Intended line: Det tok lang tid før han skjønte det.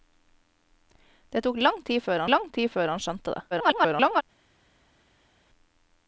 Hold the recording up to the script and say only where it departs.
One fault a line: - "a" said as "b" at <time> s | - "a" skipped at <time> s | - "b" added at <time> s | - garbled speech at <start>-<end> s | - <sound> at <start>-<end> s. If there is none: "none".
- "lang tid før" added at 2.3 s
- garbled speech at 3.5-4.2 s